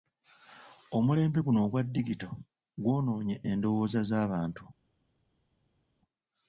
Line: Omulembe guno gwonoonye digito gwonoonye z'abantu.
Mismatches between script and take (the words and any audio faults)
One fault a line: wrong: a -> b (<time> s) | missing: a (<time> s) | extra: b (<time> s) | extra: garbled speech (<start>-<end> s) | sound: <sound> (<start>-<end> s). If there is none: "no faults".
wrong: gwonoonye -> ogwa (1.7 s)
extra: endowooza (3.5 s)